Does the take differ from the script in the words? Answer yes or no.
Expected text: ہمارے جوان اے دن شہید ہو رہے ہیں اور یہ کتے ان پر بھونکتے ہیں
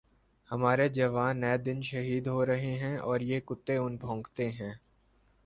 yes